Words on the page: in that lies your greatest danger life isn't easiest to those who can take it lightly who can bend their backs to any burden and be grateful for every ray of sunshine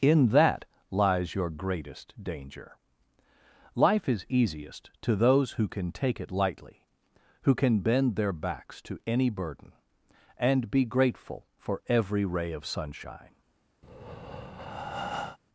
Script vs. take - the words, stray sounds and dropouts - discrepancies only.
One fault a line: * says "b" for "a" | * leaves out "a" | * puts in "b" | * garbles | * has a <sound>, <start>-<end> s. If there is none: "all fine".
* says "is" for "isn't"
* has a breath, 13.8-15.4 s